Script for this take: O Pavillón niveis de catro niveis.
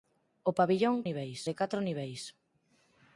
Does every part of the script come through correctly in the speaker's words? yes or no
yes